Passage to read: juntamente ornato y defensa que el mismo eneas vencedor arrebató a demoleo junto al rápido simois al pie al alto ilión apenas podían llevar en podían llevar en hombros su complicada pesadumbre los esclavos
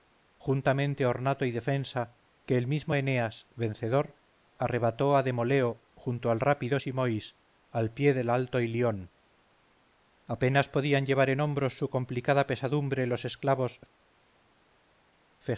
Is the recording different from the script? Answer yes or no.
yes